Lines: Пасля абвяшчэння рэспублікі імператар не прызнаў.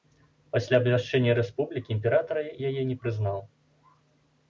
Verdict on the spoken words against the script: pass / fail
fail